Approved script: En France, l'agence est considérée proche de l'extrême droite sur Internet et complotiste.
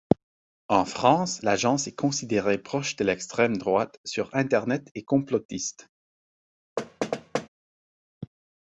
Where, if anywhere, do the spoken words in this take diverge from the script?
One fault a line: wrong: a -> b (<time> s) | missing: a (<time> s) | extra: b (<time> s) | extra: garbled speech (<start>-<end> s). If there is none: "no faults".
no faults